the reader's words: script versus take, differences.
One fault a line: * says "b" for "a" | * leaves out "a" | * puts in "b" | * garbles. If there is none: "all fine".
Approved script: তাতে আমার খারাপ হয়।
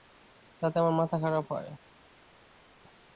* puts in "মাথা"